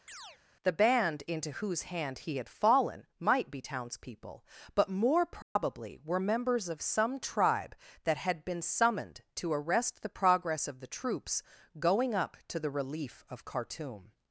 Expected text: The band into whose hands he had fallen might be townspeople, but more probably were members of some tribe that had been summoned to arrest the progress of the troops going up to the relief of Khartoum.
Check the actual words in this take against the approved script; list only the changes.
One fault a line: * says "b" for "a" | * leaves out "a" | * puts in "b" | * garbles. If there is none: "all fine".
* says "hand" for "hands"